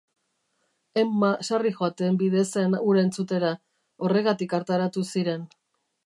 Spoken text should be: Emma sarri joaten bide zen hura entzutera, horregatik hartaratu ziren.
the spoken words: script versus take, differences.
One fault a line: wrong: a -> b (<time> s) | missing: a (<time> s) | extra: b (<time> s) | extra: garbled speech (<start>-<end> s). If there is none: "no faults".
no faults